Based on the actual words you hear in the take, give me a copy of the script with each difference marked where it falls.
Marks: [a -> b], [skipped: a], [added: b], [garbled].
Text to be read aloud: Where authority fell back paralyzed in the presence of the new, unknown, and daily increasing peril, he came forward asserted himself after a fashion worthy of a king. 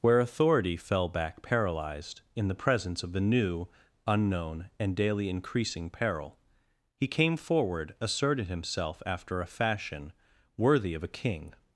Where authority fell back paralyzed in the presence of the new, unknown, and daily increasing peril, he came forward asserted himself after a fashion worthy of a king.